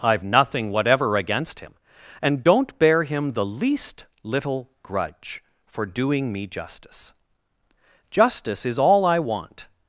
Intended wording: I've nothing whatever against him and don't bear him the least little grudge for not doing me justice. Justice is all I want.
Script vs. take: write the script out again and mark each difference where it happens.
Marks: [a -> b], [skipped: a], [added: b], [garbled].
I've nothing whatever against him and don't bear him the least little grudge for [skipped: not] doing me justice. Justice is all I want.